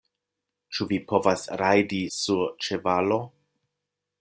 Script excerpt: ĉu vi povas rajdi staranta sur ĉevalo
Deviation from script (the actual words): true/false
true